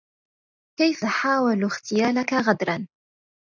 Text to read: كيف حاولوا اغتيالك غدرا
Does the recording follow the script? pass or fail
pass